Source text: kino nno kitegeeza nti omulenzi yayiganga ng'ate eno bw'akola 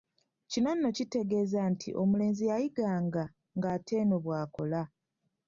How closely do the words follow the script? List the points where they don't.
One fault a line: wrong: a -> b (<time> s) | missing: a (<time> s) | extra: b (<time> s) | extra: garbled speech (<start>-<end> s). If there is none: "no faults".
no faults